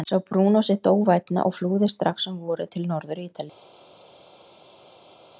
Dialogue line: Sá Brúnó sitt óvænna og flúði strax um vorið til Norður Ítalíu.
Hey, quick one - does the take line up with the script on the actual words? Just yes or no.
yes